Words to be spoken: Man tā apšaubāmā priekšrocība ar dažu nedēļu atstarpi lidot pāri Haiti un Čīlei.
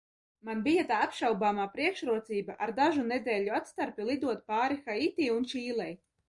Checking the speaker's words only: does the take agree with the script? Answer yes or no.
no